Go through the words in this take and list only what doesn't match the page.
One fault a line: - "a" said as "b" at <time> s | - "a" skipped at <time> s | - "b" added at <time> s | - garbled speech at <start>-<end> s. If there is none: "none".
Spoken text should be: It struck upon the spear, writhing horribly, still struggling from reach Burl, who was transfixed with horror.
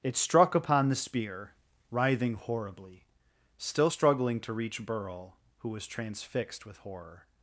- "from" said as "to" at 4.4 s